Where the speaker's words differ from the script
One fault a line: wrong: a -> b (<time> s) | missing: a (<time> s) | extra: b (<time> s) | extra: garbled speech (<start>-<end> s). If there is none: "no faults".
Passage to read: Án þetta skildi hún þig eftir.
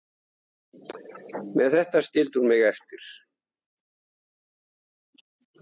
wrong: Án -> Með (1.6 s)
wrong: þig -> mig (2.5 s)